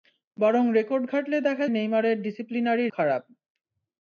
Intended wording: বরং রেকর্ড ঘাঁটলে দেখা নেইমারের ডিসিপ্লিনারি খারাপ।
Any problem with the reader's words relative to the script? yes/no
no